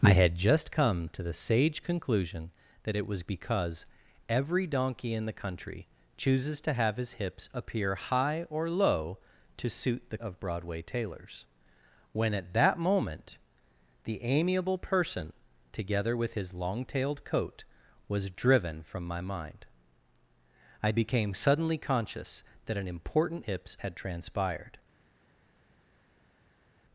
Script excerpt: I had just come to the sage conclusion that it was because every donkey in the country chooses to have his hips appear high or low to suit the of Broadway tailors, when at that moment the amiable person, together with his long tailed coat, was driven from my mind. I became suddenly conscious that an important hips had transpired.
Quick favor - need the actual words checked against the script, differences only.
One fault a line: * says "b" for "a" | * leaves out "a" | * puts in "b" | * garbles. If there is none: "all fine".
all fine